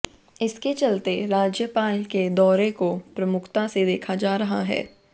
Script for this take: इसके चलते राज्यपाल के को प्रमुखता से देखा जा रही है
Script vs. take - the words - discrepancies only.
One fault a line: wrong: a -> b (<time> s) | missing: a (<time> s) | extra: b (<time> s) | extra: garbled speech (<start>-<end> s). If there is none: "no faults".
extra: दौरे (2.3 s)
wrong: रही -> रहा (4.4 s)